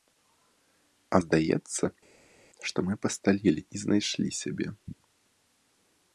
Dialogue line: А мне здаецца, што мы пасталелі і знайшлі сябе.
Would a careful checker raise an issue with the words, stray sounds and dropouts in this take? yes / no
yes